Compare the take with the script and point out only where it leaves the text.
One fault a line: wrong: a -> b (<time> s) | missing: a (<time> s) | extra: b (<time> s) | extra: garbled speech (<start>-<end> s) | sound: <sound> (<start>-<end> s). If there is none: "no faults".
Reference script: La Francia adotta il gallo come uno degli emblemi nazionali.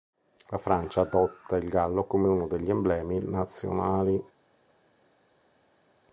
no faults